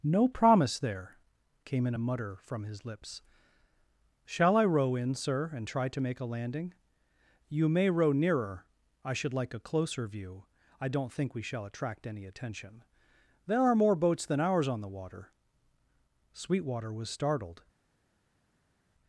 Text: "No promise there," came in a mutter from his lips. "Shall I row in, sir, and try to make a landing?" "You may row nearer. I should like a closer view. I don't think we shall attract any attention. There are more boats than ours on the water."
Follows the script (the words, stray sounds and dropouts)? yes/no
no